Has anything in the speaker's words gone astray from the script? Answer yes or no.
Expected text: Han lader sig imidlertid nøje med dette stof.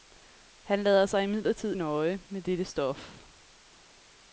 no